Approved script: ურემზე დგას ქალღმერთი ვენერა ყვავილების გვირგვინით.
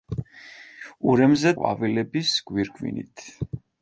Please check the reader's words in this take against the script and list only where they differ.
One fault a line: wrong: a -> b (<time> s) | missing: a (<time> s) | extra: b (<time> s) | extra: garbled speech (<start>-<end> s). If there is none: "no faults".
missing: დგას ქალღმერთი ვენერა (1.5 s)